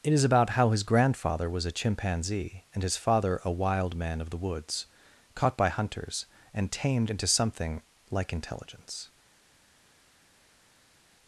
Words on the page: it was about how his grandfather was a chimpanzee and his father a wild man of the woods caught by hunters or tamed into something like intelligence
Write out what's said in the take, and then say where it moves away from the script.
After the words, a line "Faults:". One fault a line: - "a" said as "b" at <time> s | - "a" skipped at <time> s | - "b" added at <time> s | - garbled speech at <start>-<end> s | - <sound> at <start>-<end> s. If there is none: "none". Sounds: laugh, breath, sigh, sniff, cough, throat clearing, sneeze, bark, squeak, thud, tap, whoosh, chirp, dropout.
it is about how his grandfather was a chimpanzee and his father a wild man of the woods caught by hunters and tamed into something like intelligence
Faults:
- "was" said as "is" at 0.1 s
- "or" said as "and" at 6.5 s